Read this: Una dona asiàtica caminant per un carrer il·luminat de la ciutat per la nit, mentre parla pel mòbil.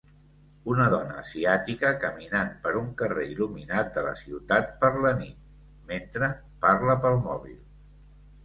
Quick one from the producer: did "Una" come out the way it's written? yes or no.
yes